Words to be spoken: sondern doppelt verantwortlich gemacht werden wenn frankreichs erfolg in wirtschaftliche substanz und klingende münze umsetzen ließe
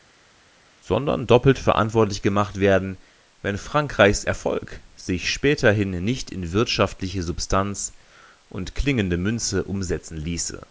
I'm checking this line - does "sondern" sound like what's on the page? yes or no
yes